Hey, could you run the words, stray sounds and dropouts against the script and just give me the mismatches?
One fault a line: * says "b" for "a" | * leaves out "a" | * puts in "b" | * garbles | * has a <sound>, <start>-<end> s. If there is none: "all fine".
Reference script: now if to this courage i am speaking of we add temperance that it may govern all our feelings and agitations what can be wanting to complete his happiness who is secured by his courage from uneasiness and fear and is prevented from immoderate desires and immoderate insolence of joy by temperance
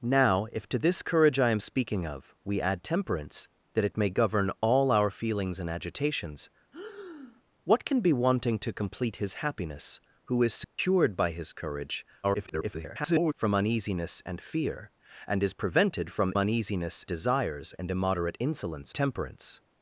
* has a breath, 6.7-7.4 s
* has a dropout, 10.6-10.8 s
* garbles
* says "uneasiness" for "immoderate"
* leaves out "of joy by"